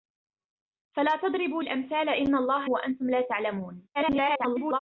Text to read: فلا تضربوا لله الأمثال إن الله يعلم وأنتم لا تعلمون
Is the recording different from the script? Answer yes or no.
yes